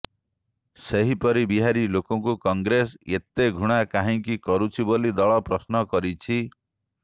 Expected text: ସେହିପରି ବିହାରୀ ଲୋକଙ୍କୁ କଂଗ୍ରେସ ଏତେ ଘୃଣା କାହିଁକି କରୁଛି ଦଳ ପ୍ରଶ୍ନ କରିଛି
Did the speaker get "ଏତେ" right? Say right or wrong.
right